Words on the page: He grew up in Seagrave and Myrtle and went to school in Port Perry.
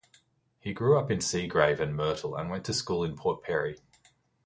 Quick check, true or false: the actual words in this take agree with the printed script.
true